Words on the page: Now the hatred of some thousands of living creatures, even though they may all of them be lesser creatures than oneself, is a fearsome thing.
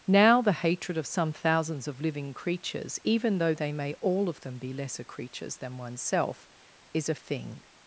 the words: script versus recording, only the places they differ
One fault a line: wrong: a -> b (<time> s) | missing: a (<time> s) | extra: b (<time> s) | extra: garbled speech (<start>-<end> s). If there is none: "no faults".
missing: fearsome (7.2 s)